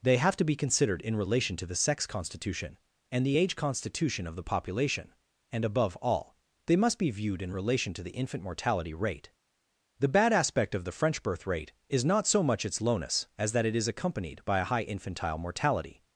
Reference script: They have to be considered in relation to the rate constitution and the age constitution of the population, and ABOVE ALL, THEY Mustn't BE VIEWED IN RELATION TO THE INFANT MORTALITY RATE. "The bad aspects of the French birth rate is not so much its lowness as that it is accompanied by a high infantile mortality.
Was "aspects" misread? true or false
true